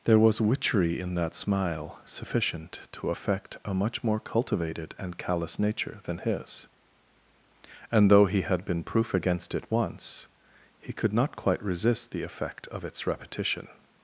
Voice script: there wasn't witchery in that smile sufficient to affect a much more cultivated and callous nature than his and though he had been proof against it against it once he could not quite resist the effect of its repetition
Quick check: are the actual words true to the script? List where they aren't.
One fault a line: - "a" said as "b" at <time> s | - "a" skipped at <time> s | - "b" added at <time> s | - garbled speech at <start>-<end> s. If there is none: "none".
- "wasn't" said as "was" at 0.2 s
- "against it" skipped at 9.7 s